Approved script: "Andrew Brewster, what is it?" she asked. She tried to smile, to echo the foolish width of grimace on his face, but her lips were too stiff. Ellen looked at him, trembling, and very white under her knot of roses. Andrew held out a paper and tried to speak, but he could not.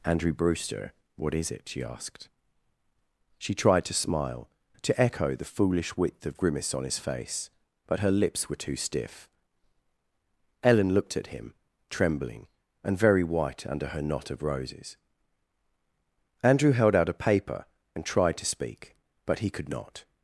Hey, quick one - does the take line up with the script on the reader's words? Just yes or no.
yes